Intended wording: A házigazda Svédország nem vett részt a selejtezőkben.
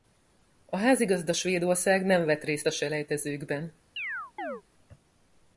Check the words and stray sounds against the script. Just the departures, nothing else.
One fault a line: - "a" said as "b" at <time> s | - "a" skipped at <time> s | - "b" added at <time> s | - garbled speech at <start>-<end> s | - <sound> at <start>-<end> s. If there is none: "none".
- chirp at 4.0-4.6 s